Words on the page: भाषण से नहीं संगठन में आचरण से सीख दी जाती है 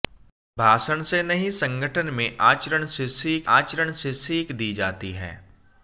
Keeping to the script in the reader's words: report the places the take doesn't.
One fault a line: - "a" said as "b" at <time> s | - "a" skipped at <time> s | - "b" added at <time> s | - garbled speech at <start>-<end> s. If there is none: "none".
- "आचरण से सीख" added at 3.5 s